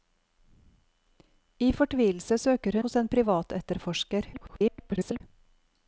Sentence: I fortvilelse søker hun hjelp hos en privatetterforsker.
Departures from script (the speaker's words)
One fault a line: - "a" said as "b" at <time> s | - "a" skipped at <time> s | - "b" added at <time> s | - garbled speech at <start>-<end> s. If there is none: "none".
- "hun hjelp" skipped at 2.8 s
- garbled speech at 4.3-5.2 s